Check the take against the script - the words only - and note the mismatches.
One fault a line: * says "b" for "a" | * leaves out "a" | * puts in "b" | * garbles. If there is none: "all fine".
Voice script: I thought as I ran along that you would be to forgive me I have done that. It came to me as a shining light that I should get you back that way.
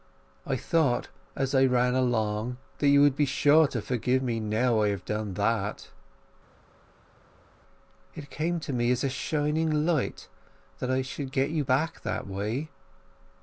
* puts in "sure"
* puts in "now"